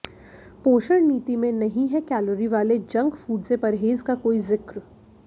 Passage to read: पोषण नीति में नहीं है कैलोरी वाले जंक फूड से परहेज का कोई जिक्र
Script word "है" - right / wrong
right